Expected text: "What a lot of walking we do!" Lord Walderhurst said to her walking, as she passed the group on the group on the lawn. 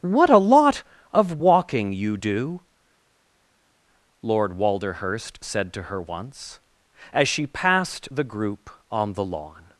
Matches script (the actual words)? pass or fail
fail